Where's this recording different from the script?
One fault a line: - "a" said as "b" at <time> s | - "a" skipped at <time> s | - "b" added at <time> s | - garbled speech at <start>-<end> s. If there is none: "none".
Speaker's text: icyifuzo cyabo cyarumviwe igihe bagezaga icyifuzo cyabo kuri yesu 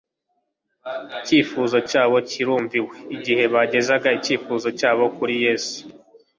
none